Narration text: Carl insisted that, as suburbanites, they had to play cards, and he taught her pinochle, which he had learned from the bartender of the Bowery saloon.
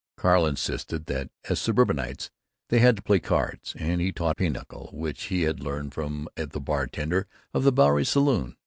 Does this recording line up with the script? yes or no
no